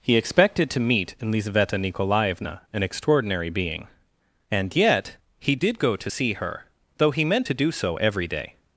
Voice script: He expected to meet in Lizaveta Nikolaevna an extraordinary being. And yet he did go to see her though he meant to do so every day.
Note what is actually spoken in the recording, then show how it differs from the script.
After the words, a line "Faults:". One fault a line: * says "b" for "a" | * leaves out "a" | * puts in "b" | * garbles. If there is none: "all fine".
He expected to meet in Lizaveta Nikolaevna an extraordinary being. And yet he did go to see her though he meant to do so every day.
Faults:
all fine